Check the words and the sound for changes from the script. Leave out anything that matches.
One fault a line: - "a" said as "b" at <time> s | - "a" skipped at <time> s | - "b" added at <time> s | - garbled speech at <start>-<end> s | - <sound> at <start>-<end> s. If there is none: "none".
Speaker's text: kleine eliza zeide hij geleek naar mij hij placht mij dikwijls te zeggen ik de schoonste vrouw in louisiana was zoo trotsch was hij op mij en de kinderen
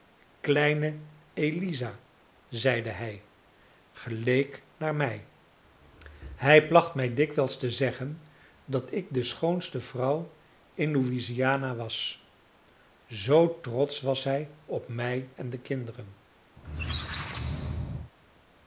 - "dat" added at 8.6 s
- squeak at 16.6-18.1 s